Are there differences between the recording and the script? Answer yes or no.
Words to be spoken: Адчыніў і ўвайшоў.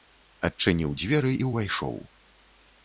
yes